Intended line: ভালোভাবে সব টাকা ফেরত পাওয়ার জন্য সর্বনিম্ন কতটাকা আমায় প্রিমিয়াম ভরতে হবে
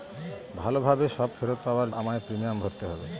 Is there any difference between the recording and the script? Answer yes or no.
yes